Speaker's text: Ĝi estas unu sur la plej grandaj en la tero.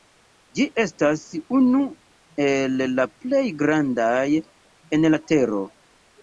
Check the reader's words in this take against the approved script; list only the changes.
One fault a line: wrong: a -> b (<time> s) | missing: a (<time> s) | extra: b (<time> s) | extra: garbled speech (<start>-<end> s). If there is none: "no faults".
wrong: sur -> el (2.4 s)